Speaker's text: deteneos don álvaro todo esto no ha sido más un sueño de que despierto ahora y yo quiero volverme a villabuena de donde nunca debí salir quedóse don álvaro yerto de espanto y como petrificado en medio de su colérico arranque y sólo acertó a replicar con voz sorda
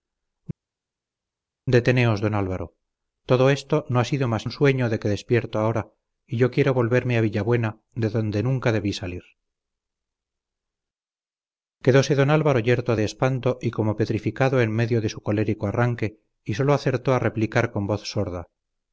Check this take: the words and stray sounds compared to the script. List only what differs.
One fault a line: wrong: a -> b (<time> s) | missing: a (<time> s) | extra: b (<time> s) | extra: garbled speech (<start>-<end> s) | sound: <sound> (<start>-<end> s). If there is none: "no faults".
no faults